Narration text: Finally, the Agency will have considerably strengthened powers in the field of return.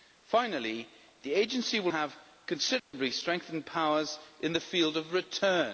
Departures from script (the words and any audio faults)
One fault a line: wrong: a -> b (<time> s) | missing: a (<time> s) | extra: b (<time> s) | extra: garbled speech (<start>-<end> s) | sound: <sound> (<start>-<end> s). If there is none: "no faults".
sound: dropout (2.8-2.9 s)